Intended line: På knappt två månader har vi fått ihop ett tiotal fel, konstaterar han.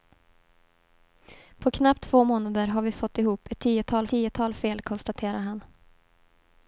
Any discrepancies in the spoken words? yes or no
yes